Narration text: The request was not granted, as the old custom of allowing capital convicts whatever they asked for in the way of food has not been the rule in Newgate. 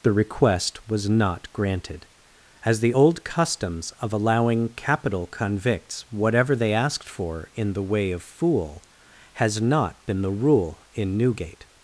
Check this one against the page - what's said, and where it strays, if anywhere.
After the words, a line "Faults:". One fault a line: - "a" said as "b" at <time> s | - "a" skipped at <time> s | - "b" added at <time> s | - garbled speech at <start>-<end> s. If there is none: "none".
The request was not granted, as the old customs of allowing capital convicts whatever they asked for in the way of fool has not been the rule in Newgate.
Faults:
- "custom" said as "customs" at 3.2 s
- "food" said as "fool" at 8.2 s